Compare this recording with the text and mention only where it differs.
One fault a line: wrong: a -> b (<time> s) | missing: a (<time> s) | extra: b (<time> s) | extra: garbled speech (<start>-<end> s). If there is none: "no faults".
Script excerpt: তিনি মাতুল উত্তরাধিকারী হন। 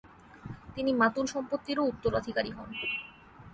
extra: সম্পত্তিরও (1.3 s)